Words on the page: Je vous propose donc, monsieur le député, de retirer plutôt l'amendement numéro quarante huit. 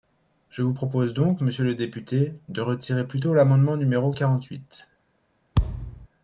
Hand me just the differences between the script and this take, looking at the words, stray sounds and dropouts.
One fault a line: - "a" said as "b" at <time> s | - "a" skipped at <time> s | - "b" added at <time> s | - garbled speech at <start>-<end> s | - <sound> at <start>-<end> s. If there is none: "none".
- thud at 5.6-6.1 s